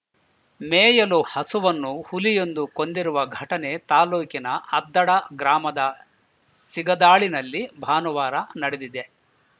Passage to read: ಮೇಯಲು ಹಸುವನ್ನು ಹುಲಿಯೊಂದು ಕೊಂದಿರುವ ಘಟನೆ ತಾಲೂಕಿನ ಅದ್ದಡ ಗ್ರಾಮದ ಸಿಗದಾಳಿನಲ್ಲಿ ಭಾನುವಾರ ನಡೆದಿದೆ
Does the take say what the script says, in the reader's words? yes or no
yes